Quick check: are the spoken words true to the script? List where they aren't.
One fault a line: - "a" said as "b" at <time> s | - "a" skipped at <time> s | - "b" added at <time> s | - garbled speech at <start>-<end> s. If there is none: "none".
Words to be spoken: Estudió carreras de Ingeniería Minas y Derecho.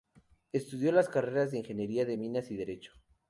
- "las" added at 0.9 s
- "de" added at 2.0 s